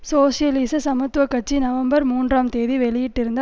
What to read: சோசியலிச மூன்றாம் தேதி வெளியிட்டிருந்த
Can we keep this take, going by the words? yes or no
no